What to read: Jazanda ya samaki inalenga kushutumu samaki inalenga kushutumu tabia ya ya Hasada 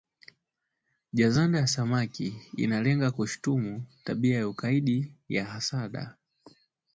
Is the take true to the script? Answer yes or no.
no